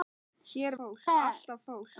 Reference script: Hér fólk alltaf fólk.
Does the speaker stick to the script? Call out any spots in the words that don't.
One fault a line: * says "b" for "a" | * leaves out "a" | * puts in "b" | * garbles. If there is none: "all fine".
all fine